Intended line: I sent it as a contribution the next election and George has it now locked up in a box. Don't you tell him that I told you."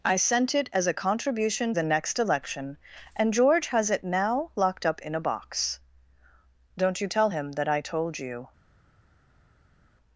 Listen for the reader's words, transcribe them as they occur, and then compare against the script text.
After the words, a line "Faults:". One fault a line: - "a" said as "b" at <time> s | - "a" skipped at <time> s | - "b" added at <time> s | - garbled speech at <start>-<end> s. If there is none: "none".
I sent it as a contribution the next election and George has it now locked up in a box. Don't you tell him that I told you."
Faults:
none